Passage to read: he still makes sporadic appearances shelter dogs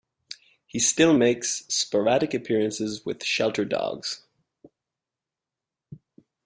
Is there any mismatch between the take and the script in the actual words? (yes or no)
yes